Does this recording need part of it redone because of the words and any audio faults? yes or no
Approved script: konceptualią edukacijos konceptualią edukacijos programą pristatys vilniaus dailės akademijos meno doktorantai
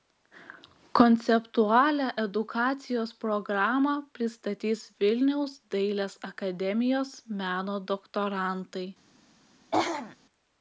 yes